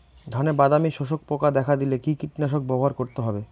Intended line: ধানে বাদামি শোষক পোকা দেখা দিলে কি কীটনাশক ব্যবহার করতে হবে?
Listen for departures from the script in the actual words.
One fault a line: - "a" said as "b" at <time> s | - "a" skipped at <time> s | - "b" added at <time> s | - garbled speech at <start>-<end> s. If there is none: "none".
none